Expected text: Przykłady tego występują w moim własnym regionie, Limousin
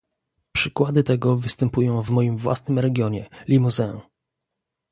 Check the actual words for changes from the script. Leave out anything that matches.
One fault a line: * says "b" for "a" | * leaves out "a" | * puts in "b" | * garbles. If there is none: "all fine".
all fine